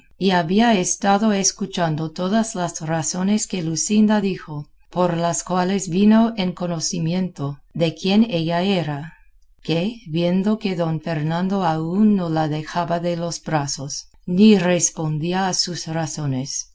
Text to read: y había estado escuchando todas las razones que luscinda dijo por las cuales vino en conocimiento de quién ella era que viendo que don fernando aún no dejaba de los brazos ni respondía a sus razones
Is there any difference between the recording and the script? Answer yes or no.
yes